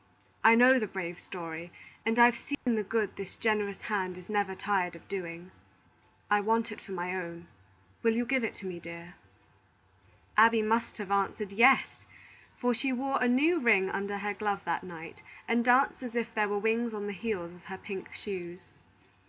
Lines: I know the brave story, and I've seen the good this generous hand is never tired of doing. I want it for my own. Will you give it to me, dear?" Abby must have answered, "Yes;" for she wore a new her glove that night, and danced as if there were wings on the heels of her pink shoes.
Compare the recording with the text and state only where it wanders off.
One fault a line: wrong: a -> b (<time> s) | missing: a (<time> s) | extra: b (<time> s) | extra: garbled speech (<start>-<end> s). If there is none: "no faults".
extra: ring under (13.6 s)